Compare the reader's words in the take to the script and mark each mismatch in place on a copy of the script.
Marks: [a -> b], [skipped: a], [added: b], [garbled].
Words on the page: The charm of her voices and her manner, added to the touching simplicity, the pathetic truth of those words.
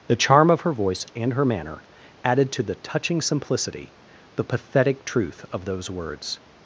The charm of her [voices -> voice] and her manner, added to the touching simplicity, the pathetic truth of those words.